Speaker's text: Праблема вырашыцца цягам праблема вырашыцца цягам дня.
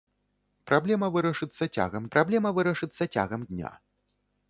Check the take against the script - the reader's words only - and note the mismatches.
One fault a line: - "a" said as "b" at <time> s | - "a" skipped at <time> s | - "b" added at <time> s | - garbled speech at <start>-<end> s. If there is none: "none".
none